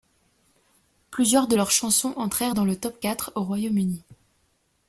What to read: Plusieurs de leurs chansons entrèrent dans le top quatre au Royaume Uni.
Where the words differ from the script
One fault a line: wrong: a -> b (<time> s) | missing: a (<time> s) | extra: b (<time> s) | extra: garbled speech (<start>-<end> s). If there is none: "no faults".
no faults